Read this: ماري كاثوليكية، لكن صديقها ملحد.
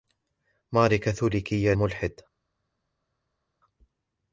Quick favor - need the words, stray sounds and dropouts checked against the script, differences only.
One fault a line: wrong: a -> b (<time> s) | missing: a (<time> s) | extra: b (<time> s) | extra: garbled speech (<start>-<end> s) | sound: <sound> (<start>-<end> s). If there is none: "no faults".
missing: لكن صديقها (1.7 s)